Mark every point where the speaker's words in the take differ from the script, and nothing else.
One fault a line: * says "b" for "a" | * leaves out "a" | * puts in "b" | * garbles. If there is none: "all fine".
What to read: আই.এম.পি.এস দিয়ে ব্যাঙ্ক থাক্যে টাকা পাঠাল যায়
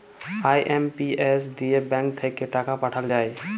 all fine